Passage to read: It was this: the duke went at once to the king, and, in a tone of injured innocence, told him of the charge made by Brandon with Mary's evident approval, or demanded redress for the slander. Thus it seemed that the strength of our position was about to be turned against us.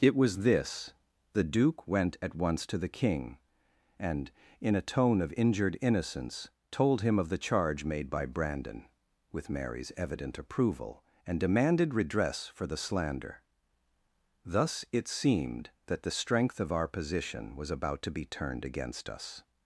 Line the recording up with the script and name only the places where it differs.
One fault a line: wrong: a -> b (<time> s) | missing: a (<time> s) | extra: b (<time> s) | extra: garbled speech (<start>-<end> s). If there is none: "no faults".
wrong: or -> and (11.3 s)